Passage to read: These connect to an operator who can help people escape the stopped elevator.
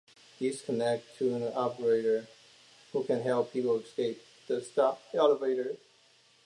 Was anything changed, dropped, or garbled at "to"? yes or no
no